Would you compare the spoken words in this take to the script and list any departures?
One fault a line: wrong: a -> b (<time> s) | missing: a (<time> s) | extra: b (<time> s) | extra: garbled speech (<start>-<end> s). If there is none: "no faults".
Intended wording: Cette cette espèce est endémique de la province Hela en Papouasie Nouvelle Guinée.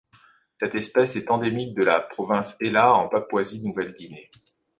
missing: cette (0.7 s)